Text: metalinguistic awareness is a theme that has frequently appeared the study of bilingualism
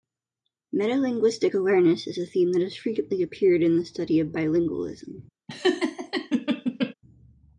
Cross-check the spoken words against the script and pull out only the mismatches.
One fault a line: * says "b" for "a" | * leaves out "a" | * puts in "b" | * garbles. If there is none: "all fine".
* puts in "in"